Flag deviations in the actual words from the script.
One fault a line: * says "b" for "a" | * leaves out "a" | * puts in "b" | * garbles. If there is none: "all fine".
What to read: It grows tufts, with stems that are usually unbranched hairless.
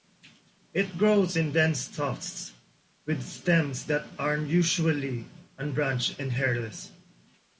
* puts in "in dense"
* puts in "and"